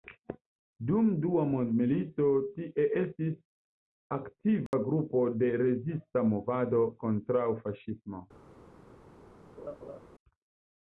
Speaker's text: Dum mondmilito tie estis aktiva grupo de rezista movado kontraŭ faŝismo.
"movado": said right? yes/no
yes